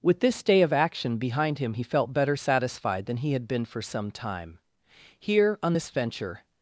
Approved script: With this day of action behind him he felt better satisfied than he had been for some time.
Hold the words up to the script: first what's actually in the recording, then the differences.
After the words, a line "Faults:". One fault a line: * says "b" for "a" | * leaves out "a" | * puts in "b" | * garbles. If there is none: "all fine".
With this day of action behind him he felt better satisfied than he had been for some time. Here, on this venture
Faults:
* puts in "Here on this venture"